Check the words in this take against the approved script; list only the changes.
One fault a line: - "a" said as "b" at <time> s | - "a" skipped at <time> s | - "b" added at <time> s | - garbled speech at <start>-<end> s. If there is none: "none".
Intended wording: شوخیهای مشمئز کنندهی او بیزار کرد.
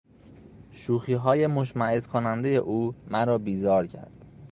- "مرا" added at 3.1 s